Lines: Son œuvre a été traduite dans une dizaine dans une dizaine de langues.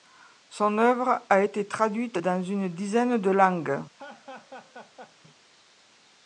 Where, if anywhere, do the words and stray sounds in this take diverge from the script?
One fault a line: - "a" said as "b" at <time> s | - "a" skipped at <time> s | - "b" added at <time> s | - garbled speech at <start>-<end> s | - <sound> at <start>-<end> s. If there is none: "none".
- "dans une dizaine" skipped at 3.2 s
- laugh at 3.9-5.2 s